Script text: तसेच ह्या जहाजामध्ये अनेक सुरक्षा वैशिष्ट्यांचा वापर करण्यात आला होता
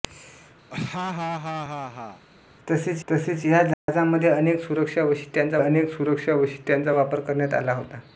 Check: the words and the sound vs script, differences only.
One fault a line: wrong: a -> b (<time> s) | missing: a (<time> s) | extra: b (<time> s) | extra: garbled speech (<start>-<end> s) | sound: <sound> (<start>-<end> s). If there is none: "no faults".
sound: laugh (0.7-2.2 s)
extra: तसेच (3.1 s)
sound: dropout (3.7-3.9 s)
extra: अनेक सुरक्षा वैशिष्ट्यांचा (5.6 s)